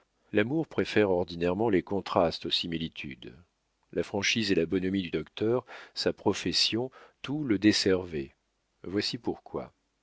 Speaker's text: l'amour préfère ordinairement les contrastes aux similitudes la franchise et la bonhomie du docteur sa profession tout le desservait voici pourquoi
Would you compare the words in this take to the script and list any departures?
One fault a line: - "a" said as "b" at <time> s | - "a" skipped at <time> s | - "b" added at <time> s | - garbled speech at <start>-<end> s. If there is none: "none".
none